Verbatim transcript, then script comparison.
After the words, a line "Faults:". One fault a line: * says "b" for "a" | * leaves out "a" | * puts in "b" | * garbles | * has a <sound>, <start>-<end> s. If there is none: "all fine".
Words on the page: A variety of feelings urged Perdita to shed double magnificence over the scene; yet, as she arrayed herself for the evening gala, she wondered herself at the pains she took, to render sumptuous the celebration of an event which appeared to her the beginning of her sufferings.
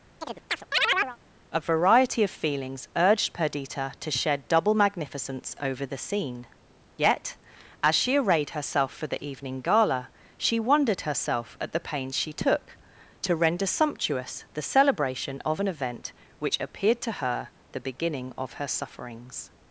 A variety of feelings urged Perdita to shed double magnificence over the scene; yet, as she arrayed herself for the evening gala, she wondered herself at the pains she took, to render sumptuous the celebration of an event which appeared to her the beginning of her sufferings.
Faults:
* has a chirp, 0.2-1.2 s